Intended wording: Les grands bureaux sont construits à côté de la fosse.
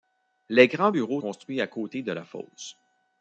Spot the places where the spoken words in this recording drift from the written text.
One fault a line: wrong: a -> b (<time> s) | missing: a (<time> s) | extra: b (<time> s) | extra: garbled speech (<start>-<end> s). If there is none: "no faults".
missing: sont (1.2 s)